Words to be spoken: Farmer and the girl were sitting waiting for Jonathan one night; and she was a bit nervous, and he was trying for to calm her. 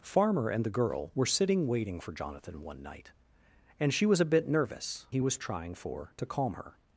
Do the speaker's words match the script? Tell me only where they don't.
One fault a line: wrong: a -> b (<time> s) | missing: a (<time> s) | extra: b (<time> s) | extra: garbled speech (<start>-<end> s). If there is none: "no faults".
missing: and (5.0 s)